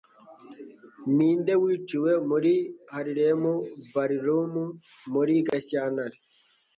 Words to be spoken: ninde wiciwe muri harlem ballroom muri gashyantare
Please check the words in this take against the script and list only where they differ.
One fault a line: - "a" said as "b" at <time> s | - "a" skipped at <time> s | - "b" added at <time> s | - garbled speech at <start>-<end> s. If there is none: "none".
none